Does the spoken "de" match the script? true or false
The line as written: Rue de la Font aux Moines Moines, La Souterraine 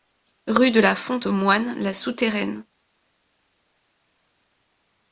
true